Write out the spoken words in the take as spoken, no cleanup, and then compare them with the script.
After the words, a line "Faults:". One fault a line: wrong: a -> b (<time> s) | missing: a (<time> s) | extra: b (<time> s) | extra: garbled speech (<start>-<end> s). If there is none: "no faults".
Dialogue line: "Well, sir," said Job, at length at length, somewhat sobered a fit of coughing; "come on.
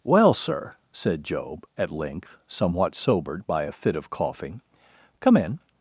"Well, sir," said Job, at length, somewhat sobered by a fit of coughing; "come in.
Faults:
missing: at length (2.4 s)
extra: by (3.5 s)
wrong: on -> in (5.4 s)